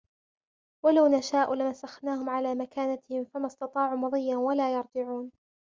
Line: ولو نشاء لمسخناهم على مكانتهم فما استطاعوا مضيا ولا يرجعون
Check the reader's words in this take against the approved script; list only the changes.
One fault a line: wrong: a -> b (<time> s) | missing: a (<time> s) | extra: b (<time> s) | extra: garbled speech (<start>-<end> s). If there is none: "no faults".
no faults